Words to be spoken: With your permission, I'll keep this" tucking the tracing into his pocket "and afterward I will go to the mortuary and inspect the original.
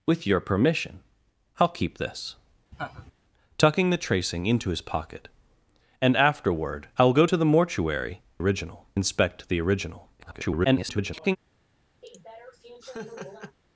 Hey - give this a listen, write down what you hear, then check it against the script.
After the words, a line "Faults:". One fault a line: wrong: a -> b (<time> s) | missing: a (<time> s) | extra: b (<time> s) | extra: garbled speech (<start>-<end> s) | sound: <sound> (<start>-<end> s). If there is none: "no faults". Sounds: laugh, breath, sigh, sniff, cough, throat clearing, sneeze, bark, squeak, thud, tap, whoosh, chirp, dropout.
With your permission, I'll keep this" tucking the tracing into his pocket "and afterward I will go to the mortuary original inspect the original. [garbled]
Faults:
sound: laugh (2.7-3.1 s)
wrong: and -> original (8.4 s)
extra: garbled speech (10.2-11.4 s)
sound: laugh (12.0-13.6 s)